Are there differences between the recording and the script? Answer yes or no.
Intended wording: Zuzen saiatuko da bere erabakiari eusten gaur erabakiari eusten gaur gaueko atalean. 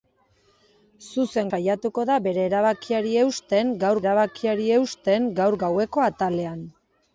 no